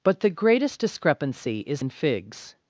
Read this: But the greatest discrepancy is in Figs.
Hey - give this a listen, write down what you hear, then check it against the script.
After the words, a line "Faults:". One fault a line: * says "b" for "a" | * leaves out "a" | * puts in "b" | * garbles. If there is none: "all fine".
But the greatest discrepancy is in Figs.
Faults:
all fine